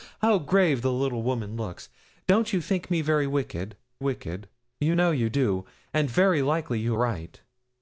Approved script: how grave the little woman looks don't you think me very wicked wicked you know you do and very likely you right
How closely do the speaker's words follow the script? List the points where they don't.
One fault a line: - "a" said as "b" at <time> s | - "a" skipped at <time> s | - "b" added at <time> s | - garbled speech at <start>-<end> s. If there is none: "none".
none